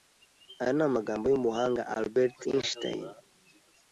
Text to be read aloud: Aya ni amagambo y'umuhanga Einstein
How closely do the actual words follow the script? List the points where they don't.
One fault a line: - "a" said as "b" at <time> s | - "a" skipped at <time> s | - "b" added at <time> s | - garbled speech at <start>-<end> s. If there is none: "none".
- "Albert" added at 2.0 s